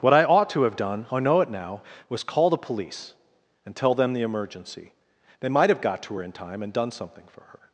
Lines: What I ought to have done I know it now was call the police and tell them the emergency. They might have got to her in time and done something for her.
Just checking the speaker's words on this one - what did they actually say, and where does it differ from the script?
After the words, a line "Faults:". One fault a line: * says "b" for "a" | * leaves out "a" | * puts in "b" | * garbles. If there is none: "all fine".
What I ought to have done I know it now was call the police and tell them the emergency. They might have got to her in time and done something for her.
Faults:
all fine